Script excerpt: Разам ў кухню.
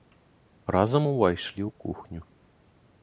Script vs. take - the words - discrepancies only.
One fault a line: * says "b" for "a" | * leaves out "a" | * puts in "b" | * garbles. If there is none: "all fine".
* puts in "увайшлі"